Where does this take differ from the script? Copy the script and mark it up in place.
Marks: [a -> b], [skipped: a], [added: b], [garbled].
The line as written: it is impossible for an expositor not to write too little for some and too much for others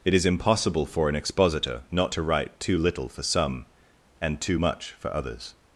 it is impossible for an expositor not to write too little for some and too much for others